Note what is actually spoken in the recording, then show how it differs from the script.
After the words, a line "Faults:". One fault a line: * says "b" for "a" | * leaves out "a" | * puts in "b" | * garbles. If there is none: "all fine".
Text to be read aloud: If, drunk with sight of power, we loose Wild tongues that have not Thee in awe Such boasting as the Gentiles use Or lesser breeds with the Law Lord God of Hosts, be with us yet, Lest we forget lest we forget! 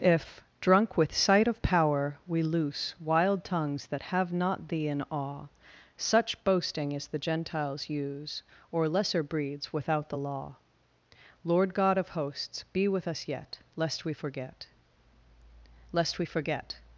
If, drunk with sight of power, we loose Wild tongues that have not Thee in awe Such boasting as the Gentiles use Or lesser breeds without the Law Lord God of Hosts, be with us yet, Lest we forget lest we forget!
Faults:
* says "without" for "with"